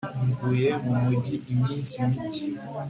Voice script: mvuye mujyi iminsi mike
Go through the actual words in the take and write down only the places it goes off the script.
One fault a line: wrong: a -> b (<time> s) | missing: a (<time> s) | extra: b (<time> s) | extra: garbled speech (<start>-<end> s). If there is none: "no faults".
extra: mu (0.8 s)